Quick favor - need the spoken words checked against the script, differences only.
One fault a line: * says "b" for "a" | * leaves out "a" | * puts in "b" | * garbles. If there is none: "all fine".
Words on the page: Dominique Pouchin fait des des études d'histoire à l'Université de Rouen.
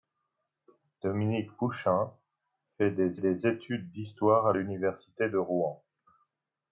all fine